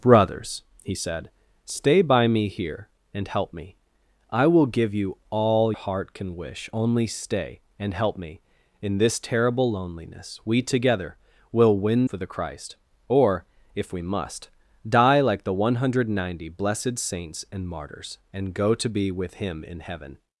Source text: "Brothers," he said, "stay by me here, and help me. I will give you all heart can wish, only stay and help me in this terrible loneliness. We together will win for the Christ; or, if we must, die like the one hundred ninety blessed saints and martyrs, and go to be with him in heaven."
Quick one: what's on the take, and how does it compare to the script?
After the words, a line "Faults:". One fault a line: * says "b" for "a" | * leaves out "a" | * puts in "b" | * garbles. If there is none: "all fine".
"Brothers," he said, "stay by me here, and help me. I will give you all heart can wish, only stay and help me in this terrible loneliness. We together will win for the Christ; or, if we must, die like the one hundred ninety blessed saints and martyrs, and go to be with him in heaven."
Faults:
all fine